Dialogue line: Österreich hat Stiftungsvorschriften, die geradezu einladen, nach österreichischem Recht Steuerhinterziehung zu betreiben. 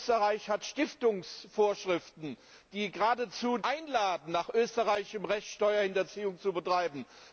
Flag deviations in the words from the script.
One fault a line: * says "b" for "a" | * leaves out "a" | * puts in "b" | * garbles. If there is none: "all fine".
all fine